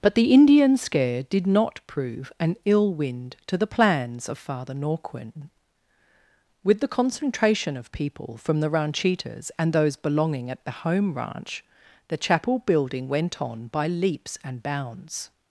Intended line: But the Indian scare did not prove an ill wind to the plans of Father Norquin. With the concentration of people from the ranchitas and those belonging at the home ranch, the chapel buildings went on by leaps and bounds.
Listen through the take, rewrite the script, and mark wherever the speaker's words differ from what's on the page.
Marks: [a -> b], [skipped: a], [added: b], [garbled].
But the Indian scare did not prove an ill wind to the plans of Father Norquin. With the concentration of people from the ranchitas and those belonging at the home ranch, the chapel [buildings -> building] went on by leaps and bounds.